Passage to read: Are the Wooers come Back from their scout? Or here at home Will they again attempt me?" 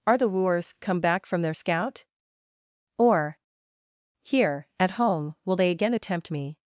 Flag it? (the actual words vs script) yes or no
no